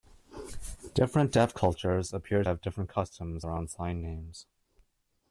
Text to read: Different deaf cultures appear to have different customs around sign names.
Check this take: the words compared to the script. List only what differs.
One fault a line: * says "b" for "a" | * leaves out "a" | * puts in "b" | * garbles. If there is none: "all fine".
* leaves out "to"